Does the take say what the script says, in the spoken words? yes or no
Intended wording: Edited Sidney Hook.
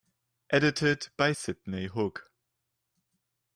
no